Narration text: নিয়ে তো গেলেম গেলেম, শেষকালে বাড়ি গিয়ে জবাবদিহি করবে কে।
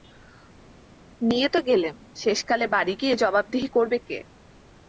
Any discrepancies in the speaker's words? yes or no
yes